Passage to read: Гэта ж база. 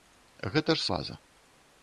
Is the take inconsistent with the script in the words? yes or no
no